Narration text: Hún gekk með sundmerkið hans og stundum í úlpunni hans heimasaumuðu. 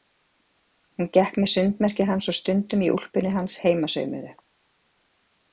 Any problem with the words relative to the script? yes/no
no